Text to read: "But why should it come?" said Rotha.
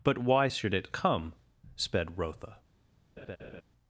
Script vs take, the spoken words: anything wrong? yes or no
yes